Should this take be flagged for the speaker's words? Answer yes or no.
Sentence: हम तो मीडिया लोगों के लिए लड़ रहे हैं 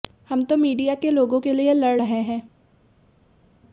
yes